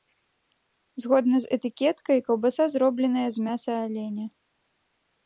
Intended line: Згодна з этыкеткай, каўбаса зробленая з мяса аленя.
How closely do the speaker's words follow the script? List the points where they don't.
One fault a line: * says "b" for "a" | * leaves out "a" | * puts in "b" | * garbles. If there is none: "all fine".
all fine